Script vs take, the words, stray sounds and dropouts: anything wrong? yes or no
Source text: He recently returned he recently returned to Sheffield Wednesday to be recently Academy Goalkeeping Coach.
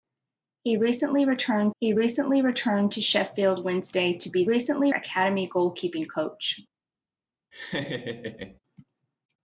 yes